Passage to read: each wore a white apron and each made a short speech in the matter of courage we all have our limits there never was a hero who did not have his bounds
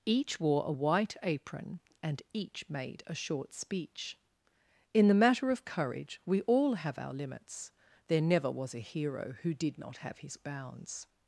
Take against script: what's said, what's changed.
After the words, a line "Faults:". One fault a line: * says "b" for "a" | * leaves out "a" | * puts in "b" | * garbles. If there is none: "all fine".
each wore a white apron and each made a short speech in the matter of courage we all have our limits there never was a hero who did not have his bounds
Faults:
all fine